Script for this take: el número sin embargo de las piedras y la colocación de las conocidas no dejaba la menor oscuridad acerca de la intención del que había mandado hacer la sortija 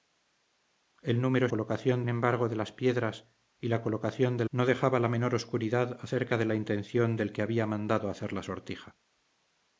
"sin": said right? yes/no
no